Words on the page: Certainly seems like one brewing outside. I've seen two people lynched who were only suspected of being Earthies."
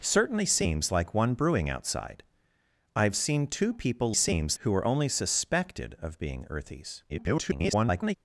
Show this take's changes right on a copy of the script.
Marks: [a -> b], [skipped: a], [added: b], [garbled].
Certainly seems like one brewing outside. I've seen two people [lynched -> seems] who were only suspected of being Earthies." [garbled]